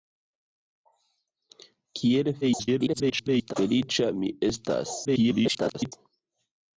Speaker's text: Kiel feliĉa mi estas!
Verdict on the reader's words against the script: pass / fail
fail